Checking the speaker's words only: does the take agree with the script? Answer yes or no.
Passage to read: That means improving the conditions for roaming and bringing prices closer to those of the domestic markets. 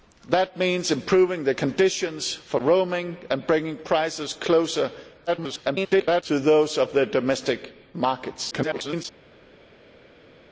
no